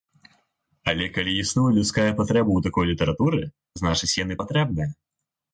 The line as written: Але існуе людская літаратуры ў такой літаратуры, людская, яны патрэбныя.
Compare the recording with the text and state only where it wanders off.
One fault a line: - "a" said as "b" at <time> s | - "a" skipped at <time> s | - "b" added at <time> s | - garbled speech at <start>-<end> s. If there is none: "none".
- "калі" added at 1.2 s
- "літаратуры" said as "патрэба" at 2.2 s
- "людская" said as "значыць" at 3.8 s